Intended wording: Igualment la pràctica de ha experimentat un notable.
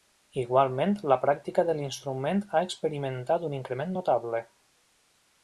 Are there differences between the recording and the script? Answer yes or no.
yes